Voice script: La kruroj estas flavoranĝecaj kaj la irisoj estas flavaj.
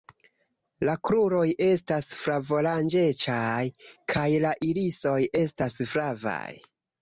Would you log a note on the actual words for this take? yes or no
no